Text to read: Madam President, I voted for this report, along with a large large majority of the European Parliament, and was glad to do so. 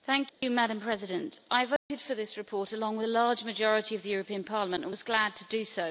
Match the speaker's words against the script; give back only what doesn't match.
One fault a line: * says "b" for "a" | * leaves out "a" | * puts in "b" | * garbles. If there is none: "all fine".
* leaves out "large"